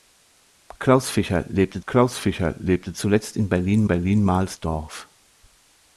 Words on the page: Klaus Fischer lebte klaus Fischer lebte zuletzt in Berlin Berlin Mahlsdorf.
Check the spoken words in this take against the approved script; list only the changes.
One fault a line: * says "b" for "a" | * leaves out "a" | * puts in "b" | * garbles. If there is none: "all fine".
all fine